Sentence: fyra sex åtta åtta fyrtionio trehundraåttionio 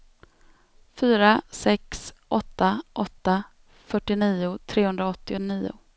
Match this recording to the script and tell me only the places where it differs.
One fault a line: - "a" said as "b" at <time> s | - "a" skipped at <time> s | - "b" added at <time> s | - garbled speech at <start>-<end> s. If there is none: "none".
none